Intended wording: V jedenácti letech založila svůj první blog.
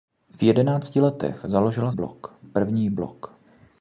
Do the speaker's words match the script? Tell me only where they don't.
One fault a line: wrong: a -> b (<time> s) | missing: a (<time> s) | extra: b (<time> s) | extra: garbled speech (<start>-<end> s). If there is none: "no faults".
wrong: svůj -> blog (1.9 s)